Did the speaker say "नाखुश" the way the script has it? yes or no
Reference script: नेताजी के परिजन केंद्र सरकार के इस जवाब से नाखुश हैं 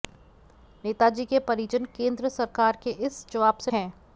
no